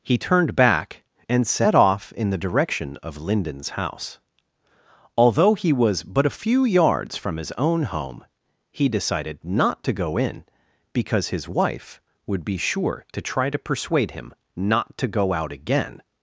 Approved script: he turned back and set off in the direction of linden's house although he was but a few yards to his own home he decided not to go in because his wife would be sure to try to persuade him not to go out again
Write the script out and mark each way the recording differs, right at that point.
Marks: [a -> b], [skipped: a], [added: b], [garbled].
he turned back and set off in the direction of linden's house although he was but a few yards [to -> from] his own home he decided not to go in because his wife would be sure to try to persuade him not to go out again